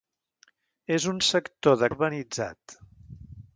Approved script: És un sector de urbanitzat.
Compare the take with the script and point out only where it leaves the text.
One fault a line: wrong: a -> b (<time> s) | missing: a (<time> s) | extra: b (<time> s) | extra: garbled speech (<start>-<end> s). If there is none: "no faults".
no faults